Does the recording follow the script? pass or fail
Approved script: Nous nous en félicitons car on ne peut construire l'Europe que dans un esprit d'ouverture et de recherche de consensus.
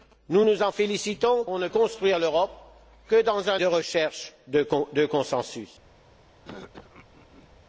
fail